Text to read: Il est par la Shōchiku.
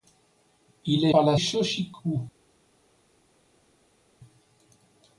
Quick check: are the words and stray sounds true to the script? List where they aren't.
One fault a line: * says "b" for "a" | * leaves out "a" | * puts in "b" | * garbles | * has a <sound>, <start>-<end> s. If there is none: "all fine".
all fine